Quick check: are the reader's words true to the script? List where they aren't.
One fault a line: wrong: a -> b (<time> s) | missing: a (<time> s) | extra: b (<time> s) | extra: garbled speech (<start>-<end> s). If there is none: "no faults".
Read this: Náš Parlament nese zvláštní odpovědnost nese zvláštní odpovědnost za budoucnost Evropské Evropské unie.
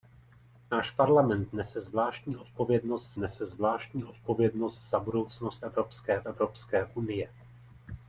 no faults